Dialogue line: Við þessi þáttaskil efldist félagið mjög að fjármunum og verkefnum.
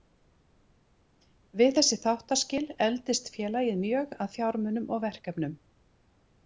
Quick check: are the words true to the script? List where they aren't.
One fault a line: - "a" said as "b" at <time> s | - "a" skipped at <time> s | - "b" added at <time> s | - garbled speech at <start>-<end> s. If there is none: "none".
none